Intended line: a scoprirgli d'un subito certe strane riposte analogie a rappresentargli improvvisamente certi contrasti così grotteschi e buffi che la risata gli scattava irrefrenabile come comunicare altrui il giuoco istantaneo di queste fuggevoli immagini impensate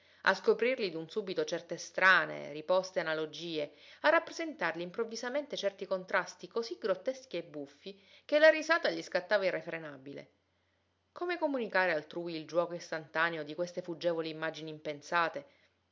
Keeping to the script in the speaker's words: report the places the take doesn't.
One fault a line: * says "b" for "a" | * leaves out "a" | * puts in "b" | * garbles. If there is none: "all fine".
all fine